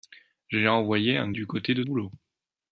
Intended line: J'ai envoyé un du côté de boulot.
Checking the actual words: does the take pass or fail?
pass